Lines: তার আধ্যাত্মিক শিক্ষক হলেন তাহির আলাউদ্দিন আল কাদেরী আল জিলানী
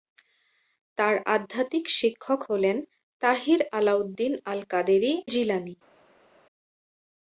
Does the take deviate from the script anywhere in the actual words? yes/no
yes